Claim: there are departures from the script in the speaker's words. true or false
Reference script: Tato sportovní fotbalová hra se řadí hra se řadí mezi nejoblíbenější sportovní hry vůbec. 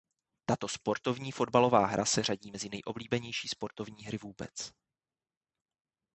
true